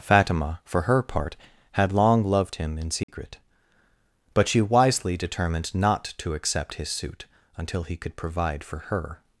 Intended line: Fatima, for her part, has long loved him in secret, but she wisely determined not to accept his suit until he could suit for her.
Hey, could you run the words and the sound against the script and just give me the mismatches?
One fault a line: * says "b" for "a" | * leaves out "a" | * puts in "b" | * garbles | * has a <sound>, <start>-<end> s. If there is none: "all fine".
* says "had" for "has"
* has a dropout, 3.0-3.1 s
* says "provide" for "suit"